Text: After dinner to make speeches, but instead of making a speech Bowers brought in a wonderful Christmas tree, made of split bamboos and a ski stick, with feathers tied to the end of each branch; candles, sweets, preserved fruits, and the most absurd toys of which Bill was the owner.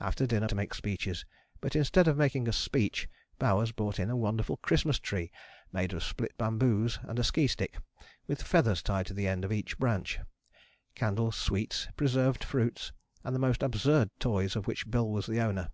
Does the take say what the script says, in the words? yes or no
yes